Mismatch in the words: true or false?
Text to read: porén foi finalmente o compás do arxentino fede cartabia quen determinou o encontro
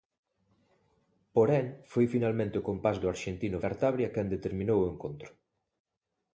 true